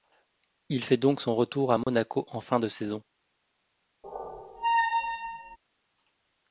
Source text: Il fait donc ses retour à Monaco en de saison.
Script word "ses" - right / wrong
wrong